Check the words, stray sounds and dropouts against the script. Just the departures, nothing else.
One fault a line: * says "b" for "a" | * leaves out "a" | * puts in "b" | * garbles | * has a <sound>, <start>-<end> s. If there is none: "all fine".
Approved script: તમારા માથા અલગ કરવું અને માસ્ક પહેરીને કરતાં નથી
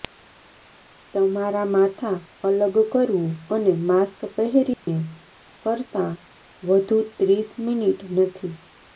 * has a dropout, 4.7-4.9 s
* puts in "વધુ ત્રીસ મિનિટ"